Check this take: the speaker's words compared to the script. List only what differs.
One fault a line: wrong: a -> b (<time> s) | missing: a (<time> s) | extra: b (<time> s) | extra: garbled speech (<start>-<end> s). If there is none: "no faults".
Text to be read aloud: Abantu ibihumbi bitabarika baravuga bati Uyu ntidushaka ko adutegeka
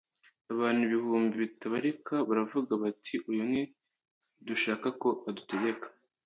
no faults